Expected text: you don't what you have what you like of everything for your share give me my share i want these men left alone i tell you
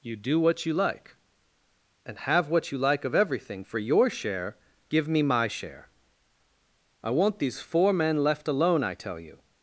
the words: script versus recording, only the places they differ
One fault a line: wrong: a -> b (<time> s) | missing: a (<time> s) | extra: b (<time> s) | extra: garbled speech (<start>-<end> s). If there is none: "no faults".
wrong: don't -> do (0.1 s)
extra: like and (0.7 s)
extra: four (7.6 s)